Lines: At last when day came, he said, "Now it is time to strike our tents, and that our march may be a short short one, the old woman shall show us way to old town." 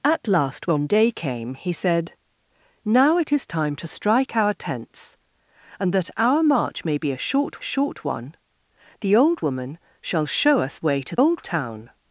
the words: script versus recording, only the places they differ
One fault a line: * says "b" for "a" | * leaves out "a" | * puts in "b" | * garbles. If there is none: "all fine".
all fine